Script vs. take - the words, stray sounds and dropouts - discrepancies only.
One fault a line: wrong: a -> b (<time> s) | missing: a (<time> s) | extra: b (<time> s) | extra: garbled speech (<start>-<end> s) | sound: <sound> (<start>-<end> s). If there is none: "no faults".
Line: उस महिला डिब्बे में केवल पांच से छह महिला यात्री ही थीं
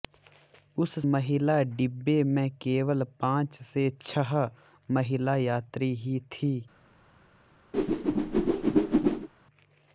sound: whoosh (7.7-9.3 s)